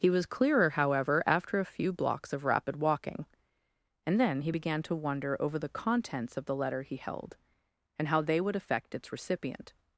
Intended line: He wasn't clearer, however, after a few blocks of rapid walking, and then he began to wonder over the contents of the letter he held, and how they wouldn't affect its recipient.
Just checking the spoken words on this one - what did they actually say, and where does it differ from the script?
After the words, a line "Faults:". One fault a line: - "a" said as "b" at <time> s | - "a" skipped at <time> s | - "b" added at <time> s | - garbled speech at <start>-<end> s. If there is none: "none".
He was clearer, however, after a few blocks of rapid walking, and then he began to wonder over the contents of the letter he held, and how they would affect its recipient.
Faults:
- "wasn't" said as "was" at 0.1 s
- "wouldn't" said as "would" at 8.4 s